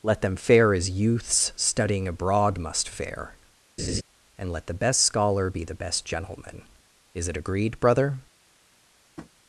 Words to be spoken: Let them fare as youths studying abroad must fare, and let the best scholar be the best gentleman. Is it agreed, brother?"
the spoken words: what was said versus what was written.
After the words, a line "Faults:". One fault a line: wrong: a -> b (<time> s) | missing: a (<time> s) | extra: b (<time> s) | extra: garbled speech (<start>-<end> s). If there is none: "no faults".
Let them fare as youths studying abroad must fare, and let the best scholar be the best gentleman. Is it agreed, brother?"
Faults:
no faults